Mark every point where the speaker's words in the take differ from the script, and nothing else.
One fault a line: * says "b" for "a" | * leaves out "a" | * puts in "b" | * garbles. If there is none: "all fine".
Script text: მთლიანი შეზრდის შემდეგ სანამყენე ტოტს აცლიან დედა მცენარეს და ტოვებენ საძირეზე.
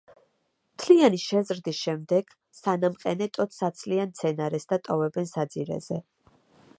* leaves out "დედა"